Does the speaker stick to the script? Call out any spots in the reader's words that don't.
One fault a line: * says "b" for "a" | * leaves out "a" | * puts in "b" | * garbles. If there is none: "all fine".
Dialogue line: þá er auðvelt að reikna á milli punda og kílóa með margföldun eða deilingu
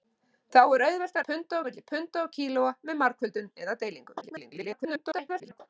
* says "punda" for "reikna"
* garbles